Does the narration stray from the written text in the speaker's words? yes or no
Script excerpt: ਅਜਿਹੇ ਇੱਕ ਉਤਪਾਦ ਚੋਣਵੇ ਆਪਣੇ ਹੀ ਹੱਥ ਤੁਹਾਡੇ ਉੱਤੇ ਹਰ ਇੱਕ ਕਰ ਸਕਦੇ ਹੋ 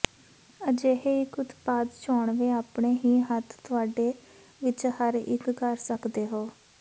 yes